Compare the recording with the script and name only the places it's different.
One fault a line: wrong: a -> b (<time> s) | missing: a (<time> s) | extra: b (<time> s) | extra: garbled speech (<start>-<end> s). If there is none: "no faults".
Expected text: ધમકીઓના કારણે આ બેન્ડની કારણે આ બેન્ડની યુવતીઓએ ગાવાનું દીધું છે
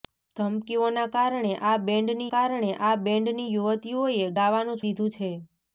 no faults